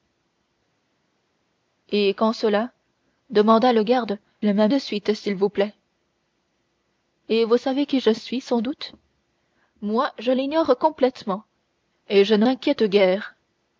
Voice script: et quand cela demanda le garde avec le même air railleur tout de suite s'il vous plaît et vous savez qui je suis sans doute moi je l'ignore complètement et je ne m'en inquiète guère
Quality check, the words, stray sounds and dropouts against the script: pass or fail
fail